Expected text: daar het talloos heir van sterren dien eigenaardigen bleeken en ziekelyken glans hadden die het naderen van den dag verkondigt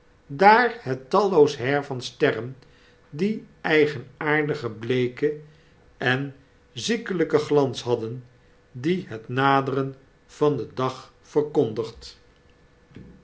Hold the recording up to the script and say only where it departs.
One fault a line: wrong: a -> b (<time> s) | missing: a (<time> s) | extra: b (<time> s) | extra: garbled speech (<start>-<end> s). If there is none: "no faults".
no faults